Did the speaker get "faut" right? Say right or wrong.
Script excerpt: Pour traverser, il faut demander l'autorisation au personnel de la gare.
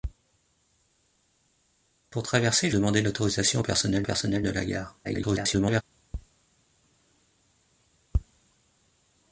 wrong